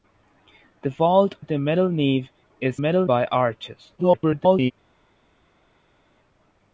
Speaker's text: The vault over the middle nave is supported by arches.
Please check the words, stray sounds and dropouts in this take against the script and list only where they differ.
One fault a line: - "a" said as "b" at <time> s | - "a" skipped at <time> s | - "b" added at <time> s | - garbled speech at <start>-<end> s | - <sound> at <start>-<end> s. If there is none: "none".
- "over" skipped at 1.4 s
- "supported" said as "middle" at 2.8 s
- garbled speech at 4.0-4.7 s